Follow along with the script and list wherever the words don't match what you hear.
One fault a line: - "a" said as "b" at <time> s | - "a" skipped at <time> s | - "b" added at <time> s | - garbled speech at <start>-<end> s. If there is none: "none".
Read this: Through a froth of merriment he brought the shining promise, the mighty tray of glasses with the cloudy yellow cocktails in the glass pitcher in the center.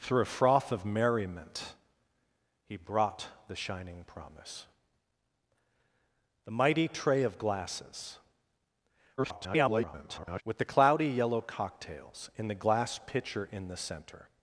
- garbled speech at 9.2-10.4 s